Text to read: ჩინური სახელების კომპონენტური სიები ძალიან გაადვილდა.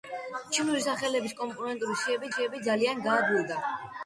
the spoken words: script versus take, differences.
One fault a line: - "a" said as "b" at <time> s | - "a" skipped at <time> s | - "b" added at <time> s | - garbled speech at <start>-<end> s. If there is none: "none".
- "სიები" added at 2.3 s